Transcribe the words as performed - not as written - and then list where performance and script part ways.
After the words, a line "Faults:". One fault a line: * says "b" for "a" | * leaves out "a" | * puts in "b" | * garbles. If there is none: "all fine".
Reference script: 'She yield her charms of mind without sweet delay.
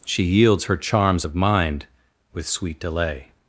'She yields her charms of mind with sweet delay.
Faults:
* says "yields" for "yield"
* says "with" for "without"